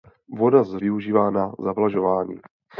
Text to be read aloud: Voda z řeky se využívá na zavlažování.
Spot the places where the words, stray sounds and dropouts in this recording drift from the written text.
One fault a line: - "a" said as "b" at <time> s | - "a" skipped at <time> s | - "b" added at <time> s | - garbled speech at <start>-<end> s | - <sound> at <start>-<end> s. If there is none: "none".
- "řeky se" skipped at 0.8 s